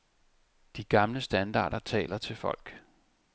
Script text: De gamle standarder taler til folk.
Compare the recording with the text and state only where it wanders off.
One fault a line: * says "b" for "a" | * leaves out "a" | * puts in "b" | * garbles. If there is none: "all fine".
all fine